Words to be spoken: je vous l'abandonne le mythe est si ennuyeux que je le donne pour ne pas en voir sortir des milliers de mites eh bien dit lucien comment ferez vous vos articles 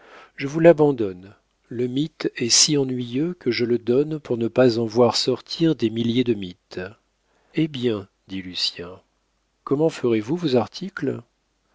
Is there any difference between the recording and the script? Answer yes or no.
no